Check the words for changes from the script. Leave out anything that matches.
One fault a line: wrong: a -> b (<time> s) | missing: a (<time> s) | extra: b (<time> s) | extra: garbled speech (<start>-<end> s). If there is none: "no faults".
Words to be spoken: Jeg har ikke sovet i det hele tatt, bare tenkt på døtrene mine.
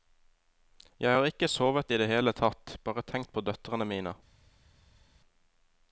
no faults